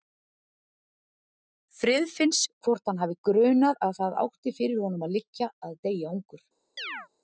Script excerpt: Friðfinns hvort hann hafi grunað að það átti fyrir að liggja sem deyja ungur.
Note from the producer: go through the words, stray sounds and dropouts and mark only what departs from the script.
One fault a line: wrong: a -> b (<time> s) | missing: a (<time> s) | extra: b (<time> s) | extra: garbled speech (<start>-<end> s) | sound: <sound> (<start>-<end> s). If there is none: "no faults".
extra: honum (4.9 s)
wrong: sem -> að (5.7 s)
sound: chirp (6.8-7.1 s)